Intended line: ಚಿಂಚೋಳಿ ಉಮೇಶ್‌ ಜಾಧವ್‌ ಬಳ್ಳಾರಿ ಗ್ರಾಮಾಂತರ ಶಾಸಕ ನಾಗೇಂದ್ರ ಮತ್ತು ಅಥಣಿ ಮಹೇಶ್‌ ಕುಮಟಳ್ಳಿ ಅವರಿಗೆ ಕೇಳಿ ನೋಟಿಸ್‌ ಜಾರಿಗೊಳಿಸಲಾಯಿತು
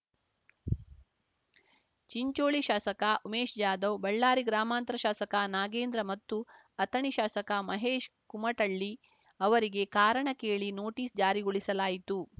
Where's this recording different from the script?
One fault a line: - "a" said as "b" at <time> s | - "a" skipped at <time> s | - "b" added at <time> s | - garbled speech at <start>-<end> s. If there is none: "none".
- "ಶಾಸಕ" added at 2.6 s
- "ಶಾಸಕ" added at 7.1 s
- "ಕಾರಣ" added at 10.0 s